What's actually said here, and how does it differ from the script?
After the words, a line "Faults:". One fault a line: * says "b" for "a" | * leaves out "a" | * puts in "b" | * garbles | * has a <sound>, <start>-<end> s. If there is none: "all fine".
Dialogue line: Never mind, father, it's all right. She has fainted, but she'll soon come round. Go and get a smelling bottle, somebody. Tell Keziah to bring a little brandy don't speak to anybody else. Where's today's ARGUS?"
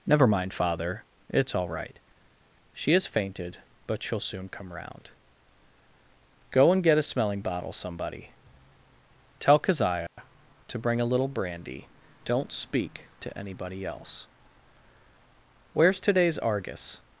Never mind, father, it's all right. She has fainted, but she'll soon come round. Go and get a smelling bottle, somebody. Tell Keziah to bring a little brandy don't speak to anybody else. Where's today's ARGUS?"
Faults:
* has a dropout, 10.1-10.2 s